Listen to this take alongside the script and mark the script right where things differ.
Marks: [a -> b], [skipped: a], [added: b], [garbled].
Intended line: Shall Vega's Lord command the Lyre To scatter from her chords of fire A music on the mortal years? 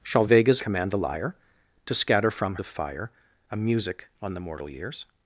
Shall Vega's [skipped: Lord] command the Lyre To scatter from [skipped: her chords] of fire A music on the mortal years?